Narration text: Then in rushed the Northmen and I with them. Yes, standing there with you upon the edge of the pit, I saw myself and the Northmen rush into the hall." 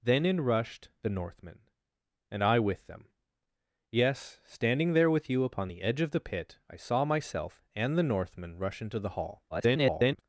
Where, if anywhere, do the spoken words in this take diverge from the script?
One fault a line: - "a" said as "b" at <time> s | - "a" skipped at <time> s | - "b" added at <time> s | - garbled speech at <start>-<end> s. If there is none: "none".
- garbled speech at 9.5-10.2 s